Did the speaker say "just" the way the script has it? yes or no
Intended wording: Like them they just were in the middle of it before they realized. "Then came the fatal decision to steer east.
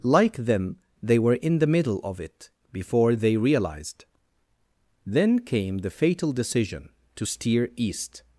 no